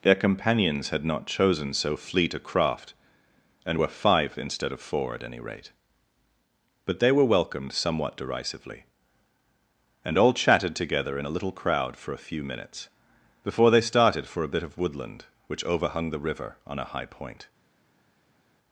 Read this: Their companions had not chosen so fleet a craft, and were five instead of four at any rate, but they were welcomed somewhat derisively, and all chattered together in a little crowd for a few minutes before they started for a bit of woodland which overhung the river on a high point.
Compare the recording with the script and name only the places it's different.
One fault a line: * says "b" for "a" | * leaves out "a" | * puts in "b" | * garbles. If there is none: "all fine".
* says "chatted" for "chattered"